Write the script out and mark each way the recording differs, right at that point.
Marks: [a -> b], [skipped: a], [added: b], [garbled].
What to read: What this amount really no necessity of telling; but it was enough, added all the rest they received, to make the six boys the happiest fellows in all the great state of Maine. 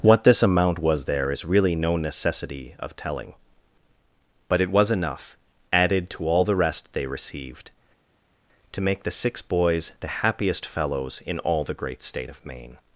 What this amount [added: was there is] really no necessity of telling; but it was enough, added [added: to] all the rest they received, to make the six boys the happiest fellows in all the great state of Maine.